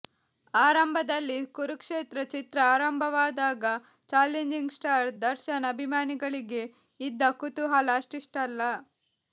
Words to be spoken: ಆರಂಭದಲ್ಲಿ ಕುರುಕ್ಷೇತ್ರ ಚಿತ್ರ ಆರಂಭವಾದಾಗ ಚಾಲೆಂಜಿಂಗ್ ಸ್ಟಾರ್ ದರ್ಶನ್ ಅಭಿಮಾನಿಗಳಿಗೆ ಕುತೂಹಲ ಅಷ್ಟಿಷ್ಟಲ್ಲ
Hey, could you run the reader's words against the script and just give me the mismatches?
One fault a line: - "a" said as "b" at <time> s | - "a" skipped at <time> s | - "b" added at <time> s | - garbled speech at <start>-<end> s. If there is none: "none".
- "ಇದ್ದ" added at 7.0 s